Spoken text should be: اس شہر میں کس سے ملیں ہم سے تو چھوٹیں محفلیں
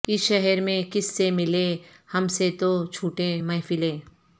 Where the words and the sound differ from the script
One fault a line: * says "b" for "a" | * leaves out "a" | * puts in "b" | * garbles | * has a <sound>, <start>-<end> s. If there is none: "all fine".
all fine